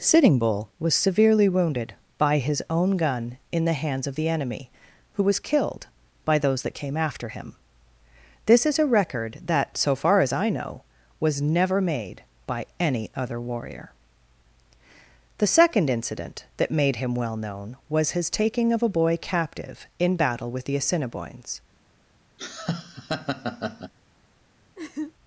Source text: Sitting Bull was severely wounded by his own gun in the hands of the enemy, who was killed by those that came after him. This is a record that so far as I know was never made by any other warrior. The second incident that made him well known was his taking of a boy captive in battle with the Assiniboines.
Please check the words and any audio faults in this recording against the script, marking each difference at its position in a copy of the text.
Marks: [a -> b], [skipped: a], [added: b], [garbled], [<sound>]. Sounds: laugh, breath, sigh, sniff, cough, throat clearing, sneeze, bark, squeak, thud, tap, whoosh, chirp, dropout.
Sitting Bull was severely wounded by his own gun in the hands of the enemy, who was killed by those that came after him. This is a record that so far as I know was never made by any other warrior. The second incident that made him well known was his taking of a boy captive in battle with the Assiniboines. [laugh] [laugh]